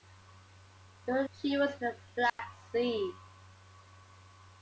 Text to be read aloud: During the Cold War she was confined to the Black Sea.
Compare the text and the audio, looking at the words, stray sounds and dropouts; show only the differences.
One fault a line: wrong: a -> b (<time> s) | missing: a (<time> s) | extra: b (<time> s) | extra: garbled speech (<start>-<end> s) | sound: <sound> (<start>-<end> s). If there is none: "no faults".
missing: the Cold War (1.3 s)
missing: confined (1.7 s)
sound: dropout (2.3-2.4 s)